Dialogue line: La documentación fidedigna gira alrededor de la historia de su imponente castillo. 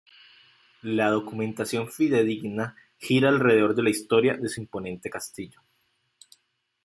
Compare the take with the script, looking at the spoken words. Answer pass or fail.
pass